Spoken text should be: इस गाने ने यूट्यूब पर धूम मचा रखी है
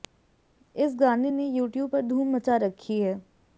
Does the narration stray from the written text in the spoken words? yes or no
no